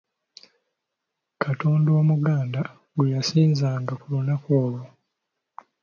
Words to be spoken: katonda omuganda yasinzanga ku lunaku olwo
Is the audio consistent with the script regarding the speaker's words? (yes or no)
no